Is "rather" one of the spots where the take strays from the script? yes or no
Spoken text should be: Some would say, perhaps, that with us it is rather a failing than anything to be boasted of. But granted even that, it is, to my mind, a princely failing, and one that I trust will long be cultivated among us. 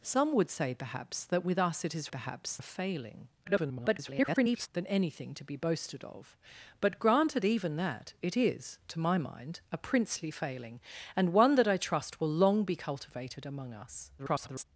yes